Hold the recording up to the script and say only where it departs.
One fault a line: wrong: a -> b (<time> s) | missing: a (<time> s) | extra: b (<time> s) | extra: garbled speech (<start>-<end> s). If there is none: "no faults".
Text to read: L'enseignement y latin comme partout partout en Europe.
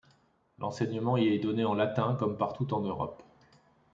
extra: est donné en (1.3 s)
missing: partout (2.7 s)